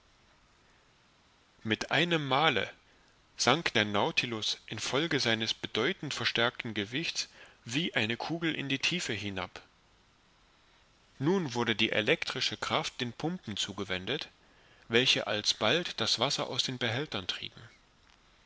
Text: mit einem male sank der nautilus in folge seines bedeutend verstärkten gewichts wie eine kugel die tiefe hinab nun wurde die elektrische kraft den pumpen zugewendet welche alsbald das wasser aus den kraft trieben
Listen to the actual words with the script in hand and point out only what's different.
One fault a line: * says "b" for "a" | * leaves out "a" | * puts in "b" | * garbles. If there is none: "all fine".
* puts in "in"
* says "behältern" for "kraft"